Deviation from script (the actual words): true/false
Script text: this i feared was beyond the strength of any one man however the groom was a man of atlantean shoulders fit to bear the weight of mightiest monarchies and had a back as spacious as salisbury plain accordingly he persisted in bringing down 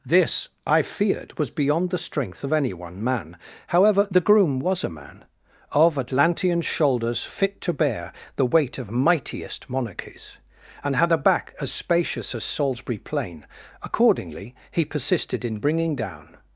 false